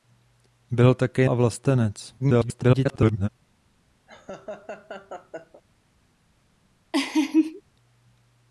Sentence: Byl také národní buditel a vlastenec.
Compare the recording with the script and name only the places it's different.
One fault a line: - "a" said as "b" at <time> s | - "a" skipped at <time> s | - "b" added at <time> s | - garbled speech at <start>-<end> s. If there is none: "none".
- "národní buditel" skipped at 1.3 s
- garbled speech at 2.2-3.3 s